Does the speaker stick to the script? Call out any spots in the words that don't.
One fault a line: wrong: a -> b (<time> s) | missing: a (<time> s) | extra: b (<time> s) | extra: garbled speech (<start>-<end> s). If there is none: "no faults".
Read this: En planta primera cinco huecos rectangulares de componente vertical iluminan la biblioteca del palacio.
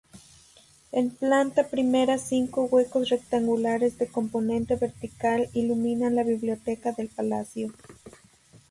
no faults